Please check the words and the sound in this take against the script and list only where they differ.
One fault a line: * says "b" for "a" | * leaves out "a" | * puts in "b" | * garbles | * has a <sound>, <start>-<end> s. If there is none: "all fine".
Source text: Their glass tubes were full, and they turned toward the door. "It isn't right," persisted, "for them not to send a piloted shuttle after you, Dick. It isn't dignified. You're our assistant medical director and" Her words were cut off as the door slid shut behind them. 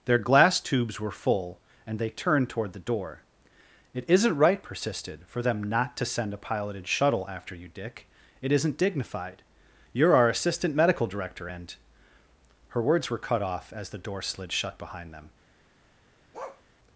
* has a bark, 16.3-16.6 s